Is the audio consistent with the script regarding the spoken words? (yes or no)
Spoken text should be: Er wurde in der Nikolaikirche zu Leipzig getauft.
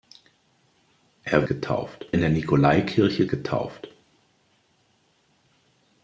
no